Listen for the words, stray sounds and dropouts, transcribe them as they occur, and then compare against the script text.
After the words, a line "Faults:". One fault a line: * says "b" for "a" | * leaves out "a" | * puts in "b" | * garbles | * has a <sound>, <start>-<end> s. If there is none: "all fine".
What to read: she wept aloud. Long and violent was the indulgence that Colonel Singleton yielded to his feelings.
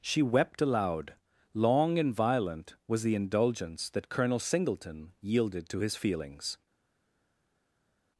she wept aloud. Long and violent was the indulgence that Colonel Singleton yielded to his feelings.
Faults:
all fine